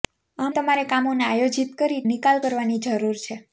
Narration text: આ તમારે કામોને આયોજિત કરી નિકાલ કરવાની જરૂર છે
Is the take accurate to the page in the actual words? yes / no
yes